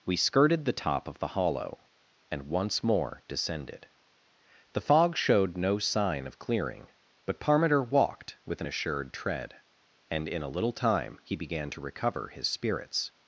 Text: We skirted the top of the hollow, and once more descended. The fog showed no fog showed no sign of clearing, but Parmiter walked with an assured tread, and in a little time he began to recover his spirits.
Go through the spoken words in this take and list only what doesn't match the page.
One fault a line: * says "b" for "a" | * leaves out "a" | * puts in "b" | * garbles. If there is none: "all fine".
* leaves out "fog showed no"